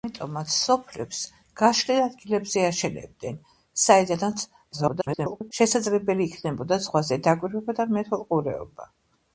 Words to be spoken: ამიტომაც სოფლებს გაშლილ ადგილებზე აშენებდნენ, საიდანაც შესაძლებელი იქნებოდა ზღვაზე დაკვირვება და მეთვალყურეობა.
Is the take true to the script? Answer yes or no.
no